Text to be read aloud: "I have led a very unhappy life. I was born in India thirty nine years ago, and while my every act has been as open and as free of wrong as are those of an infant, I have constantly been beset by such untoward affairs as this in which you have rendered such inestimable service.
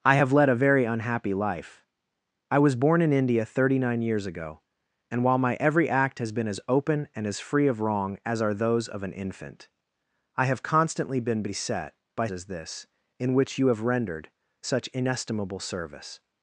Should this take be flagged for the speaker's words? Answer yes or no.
yes